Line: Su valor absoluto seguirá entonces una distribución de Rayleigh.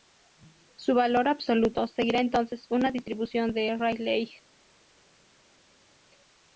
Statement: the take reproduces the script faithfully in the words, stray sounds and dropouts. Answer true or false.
true